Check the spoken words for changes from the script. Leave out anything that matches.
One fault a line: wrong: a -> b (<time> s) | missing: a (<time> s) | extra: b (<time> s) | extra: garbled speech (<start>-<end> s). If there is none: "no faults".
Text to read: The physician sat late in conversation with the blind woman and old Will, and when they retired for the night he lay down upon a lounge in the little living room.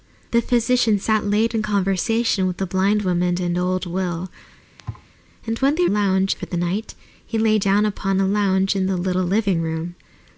wrong: retired -> lounge (5.9 s)